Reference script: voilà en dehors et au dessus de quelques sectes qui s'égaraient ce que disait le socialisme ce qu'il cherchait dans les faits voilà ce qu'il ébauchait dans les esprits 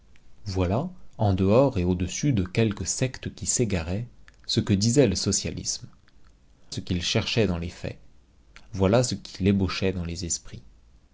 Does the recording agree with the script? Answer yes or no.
yes